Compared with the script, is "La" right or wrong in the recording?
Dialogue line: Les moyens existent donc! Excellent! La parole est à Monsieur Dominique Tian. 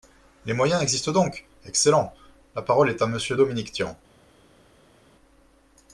right